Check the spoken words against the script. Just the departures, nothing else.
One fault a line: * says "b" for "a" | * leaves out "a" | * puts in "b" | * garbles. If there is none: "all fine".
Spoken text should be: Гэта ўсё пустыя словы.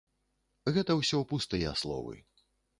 all fine